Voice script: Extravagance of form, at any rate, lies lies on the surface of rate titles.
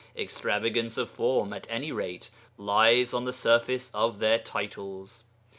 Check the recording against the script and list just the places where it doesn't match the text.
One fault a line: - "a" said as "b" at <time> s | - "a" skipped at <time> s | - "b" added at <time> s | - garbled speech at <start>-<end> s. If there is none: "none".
- "lies" skipped at 3.1 s
- "rate" said as "their" at 4.2 s